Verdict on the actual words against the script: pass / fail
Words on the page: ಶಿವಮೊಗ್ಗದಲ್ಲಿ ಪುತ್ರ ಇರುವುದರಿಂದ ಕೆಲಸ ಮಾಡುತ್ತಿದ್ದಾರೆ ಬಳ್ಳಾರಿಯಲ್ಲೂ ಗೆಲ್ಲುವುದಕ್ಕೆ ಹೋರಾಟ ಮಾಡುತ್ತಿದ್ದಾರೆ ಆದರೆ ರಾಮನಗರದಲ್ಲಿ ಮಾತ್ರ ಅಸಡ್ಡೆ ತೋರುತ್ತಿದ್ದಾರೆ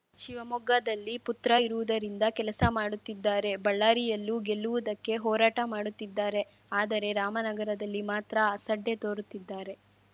pass